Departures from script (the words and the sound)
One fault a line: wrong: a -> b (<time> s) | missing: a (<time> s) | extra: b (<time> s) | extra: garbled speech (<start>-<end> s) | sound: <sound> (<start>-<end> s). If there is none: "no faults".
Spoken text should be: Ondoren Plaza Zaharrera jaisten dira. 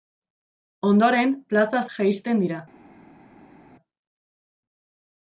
missing: Zaharrera (1.8 s)